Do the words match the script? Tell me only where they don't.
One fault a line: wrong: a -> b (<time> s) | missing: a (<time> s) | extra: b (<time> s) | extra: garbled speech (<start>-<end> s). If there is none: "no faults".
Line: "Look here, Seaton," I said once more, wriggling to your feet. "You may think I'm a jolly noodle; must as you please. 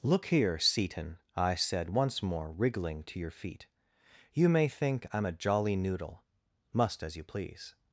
no faults